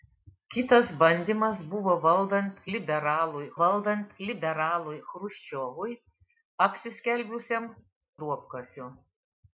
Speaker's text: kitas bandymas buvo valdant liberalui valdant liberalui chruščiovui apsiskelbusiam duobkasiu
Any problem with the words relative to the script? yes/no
no